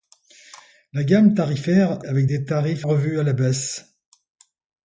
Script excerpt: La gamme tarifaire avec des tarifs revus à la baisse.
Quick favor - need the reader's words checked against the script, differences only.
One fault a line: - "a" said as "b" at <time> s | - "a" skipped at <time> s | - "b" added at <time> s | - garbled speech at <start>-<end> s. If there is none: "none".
none